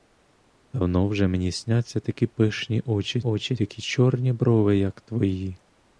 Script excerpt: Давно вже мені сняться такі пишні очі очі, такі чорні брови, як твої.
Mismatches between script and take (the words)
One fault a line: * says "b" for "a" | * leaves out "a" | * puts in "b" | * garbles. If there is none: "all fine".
all fine